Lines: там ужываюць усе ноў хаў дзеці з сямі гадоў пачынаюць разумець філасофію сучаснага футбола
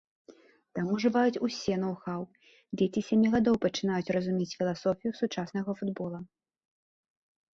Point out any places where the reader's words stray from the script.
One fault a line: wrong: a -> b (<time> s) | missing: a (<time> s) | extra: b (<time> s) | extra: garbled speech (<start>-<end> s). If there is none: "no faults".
no faults